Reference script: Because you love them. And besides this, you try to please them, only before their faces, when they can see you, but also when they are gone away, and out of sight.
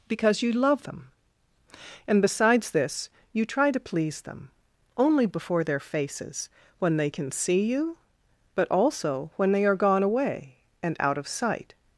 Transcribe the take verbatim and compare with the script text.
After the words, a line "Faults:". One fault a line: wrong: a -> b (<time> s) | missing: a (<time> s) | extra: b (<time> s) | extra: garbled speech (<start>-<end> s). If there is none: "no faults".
Because you love them. And besides this, you try to please them, only before their faces, when they can see you, but also when they are gone away, and out of sight.
Faults:
no faults